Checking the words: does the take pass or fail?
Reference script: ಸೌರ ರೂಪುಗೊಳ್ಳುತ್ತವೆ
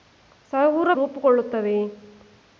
pass